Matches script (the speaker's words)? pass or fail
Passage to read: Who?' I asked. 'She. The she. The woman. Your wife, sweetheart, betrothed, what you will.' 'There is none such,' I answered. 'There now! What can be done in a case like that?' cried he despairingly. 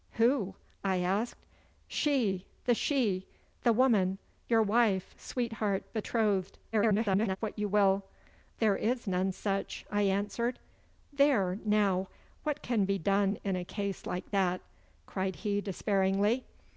fail